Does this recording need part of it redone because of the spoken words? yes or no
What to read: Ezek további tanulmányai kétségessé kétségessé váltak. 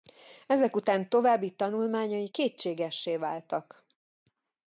yes